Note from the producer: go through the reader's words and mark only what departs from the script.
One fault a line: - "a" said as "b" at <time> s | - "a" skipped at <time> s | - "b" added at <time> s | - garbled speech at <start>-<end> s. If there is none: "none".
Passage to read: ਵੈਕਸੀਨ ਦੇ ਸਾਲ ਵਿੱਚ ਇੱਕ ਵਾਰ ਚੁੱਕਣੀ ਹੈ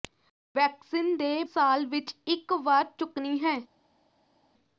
none